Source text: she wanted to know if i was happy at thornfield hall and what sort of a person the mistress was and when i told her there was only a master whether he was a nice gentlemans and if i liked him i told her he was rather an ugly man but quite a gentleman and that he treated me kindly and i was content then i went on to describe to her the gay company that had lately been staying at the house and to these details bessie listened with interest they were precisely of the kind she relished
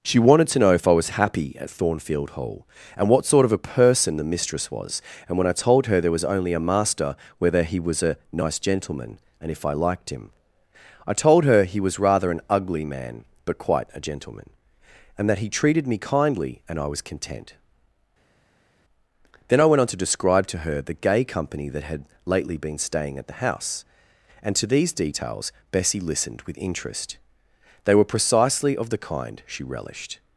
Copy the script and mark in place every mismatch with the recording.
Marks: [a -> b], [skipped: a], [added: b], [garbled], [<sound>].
she wanted to know if i was happy at thornfield hall and what sort of a person the mistress was and when i told her there was only a master whether he was a nice [gentlemans -> gentleman] and if i liked him i told her he was rather an ugly man but quite a gentleman and that he treated me kindly and i was content then i went on to describe to her the gay company that had lately been staying at the house and to these details bessie listened with interest they were precisely of the kind she relished